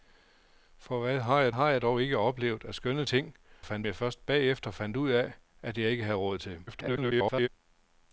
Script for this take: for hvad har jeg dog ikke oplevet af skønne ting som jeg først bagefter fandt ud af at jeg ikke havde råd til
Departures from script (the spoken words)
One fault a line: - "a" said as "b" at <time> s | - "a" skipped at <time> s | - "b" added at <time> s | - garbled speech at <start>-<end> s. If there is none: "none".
- "har jeg" added at 1.5 s
- "som" said as "fandt" at 3.6 s
- garbled speech at 6.7-7.5 s